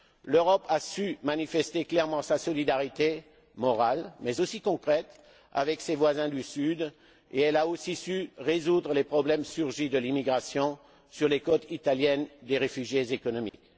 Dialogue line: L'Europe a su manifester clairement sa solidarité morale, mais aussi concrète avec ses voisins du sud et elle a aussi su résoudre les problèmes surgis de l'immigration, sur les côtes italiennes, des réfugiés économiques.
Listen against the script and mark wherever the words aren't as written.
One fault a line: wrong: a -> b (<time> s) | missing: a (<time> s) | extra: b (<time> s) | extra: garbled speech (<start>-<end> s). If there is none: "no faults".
no faults